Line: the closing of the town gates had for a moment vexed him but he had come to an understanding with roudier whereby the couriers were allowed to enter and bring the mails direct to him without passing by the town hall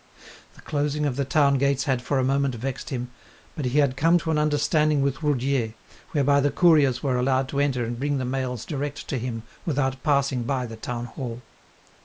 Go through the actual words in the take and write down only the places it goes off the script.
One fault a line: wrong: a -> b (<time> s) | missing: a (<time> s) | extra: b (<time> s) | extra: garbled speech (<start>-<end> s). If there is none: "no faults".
no faults